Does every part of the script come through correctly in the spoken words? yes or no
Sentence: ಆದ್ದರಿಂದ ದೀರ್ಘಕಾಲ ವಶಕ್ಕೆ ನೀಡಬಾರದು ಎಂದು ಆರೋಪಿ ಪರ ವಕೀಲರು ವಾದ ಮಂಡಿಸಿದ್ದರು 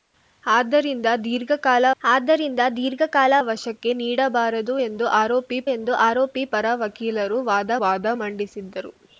no